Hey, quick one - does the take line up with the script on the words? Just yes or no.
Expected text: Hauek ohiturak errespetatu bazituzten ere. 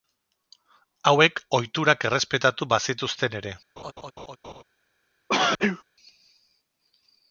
yes